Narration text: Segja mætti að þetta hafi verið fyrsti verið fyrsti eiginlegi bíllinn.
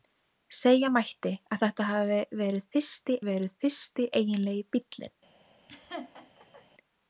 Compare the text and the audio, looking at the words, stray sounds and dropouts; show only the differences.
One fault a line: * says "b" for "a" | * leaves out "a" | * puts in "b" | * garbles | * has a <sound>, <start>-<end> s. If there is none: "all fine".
* has a laugh, 5.7-6.7 s